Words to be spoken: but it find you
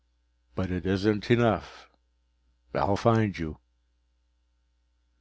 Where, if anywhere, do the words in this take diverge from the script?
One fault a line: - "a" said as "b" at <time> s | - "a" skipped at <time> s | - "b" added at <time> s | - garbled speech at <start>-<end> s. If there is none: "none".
- "isn't enough i'll" added at 0.9 s